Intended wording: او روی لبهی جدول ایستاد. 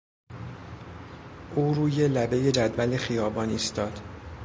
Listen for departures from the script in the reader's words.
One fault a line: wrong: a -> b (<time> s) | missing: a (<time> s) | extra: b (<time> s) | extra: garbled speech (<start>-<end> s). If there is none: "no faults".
extra: خیابان (3.0 s)